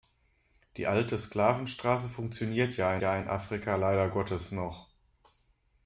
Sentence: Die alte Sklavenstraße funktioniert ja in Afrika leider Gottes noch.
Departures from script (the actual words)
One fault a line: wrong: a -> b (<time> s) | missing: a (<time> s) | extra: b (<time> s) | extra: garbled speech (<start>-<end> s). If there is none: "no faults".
extra: ja (3.0 s)